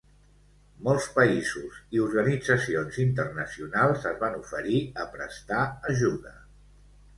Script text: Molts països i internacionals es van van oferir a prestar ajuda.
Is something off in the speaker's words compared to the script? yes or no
yes